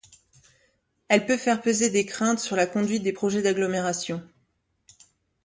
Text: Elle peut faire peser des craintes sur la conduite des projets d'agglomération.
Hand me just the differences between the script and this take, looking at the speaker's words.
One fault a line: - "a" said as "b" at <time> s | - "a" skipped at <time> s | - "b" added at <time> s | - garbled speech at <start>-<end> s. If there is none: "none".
none